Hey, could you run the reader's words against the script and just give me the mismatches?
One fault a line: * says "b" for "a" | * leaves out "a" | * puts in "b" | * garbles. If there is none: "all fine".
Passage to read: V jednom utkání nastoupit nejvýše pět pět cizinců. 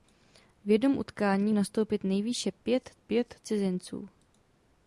all fine